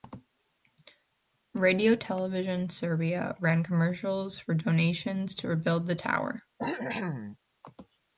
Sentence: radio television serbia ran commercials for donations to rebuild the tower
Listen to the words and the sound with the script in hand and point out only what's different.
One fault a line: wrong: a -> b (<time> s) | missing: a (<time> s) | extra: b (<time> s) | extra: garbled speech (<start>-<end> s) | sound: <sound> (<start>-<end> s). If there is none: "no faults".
sound: cough (6.6-7.4 s)